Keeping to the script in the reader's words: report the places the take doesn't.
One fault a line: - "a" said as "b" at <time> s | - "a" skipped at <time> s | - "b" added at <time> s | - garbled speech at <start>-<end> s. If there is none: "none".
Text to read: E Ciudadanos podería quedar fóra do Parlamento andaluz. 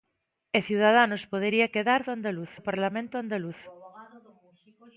- "fóra" said as "andaluz" at 2.1 s